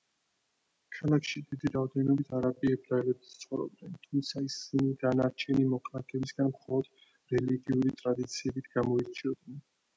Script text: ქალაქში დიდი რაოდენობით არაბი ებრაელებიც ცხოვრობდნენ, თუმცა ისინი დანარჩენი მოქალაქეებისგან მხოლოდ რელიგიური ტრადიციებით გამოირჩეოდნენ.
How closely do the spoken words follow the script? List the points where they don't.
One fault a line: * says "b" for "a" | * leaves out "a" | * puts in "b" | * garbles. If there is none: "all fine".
all fine